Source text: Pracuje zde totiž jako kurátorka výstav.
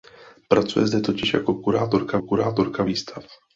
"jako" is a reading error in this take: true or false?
false